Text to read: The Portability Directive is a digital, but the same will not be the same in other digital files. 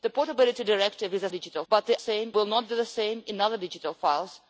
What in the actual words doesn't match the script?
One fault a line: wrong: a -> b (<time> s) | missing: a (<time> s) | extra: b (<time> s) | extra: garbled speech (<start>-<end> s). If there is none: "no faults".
no faults